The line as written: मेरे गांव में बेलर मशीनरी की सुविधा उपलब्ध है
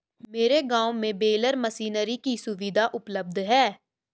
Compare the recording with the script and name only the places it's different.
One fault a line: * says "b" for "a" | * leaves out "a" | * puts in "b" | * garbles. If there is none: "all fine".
all fine